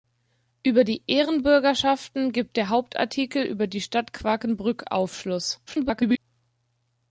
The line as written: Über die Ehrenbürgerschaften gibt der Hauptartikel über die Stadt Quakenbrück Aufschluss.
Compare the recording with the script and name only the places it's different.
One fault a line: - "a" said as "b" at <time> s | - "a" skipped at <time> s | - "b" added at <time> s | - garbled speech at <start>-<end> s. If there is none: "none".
- garbled speech at 5.7-6.2 s